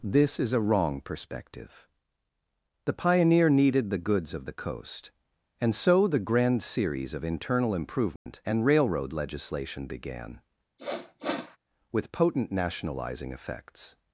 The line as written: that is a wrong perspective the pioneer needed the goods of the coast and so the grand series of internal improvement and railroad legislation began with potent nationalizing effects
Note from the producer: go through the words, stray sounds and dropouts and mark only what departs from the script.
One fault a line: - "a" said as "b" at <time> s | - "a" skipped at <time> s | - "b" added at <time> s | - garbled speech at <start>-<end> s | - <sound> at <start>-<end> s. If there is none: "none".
- "that" said as "this" at 0.0 s
- dropout at 8.2-8.3 s
- sniff at 10.8-11.6 s